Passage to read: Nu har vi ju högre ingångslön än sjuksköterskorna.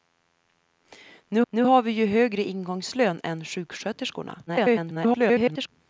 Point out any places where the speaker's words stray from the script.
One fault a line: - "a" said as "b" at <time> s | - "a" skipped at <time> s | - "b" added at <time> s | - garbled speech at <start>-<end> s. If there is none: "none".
- "nu" added at 1.5 s
- garbled speech at 4.5-5.7 s